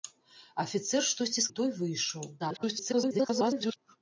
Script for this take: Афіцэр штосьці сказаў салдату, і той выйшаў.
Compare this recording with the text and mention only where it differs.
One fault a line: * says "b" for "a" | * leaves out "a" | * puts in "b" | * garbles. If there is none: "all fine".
* leaves out "сказаў салдату"
* garbles